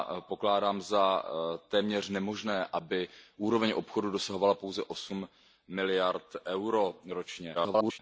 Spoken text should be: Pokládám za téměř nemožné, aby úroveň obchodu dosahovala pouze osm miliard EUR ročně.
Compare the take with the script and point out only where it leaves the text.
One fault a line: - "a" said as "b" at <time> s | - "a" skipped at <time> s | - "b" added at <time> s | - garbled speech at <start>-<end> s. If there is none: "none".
- garbled speech at 7.5-8.0 s